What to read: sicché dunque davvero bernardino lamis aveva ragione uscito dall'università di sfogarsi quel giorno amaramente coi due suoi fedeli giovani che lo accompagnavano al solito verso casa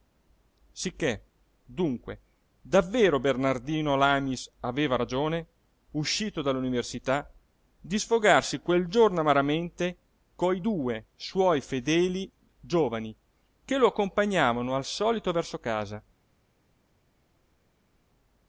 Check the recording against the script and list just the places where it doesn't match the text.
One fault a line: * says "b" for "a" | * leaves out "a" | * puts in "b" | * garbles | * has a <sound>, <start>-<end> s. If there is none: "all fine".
all fine